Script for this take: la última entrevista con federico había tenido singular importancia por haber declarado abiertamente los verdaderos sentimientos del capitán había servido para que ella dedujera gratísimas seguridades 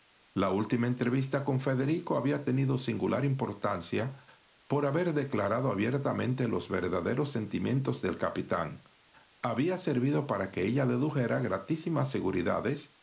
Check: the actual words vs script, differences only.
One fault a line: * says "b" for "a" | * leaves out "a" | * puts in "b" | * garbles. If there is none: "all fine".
all fine